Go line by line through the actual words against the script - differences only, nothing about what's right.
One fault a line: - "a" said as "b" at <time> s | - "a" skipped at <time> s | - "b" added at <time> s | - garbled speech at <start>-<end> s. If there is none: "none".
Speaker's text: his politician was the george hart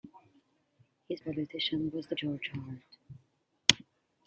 none